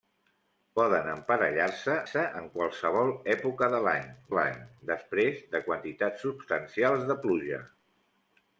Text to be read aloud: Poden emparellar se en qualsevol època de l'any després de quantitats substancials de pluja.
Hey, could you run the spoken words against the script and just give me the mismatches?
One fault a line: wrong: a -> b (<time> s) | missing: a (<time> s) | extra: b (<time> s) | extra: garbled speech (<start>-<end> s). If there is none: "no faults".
extra: se (2.1 s)
extra: l'any (4.3 s)